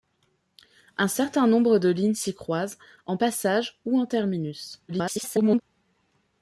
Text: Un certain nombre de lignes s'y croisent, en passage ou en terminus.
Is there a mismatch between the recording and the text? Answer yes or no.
yes